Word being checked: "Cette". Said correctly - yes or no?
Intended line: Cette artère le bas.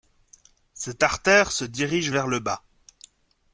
yes